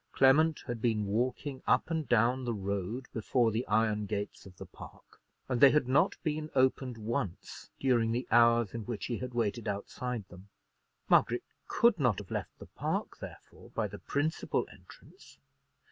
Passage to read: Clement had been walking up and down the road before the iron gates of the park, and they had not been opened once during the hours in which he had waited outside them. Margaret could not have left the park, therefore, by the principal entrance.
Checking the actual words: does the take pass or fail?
pass